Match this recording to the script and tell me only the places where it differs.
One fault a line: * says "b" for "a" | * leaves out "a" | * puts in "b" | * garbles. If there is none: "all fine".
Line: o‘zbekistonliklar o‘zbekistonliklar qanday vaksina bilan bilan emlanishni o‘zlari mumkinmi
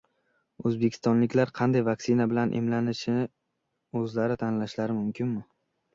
* leaves out "o‘zbekistonliklar"
* leaves out "bilan"
* puts in "tanlashlari"